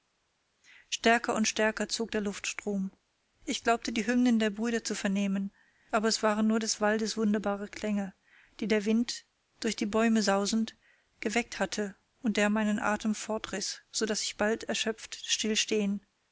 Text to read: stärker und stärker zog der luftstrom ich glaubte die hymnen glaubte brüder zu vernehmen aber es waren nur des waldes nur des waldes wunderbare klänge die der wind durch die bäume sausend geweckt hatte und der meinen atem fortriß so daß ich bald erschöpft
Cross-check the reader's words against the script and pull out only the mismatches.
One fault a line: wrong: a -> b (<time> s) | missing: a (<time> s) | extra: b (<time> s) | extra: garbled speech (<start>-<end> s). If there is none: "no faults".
wrong: glaubte -> der (4.4 s)
missing: nur des waldes (7.2 s)